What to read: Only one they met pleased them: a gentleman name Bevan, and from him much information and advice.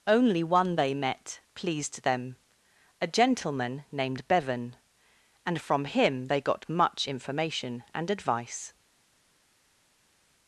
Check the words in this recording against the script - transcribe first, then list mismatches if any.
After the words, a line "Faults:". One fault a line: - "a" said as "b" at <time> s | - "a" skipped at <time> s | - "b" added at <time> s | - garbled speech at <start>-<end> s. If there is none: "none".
Only one they met pleased them: a gentleman named Bevan, and from him they got much information and advice.
Faults:
- "name" said as "named" at 3.9 s
- "they got" added at 6.2 s